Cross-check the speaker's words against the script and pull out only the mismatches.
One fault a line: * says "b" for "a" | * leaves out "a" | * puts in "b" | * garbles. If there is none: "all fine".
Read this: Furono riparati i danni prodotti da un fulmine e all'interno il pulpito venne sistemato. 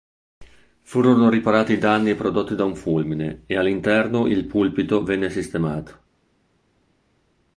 all fine